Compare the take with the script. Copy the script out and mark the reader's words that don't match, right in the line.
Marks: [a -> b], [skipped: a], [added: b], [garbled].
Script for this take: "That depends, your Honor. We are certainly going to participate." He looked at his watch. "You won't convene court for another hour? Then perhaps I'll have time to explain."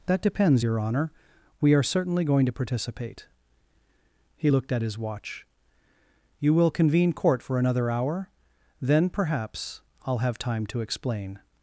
"That depends, your Honor. We are certainly going to participate." He looked at his watch. "You [won't -> will] convene court for another hour? Then perhaps I'll have time to explain."